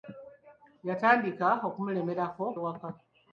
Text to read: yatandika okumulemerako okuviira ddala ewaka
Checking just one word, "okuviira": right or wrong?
wrong